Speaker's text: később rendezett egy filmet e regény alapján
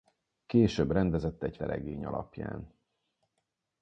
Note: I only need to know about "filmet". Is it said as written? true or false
false